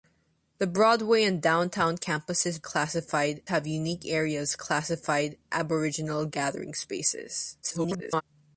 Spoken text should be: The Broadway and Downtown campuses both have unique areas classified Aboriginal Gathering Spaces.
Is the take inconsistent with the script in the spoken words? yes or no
yes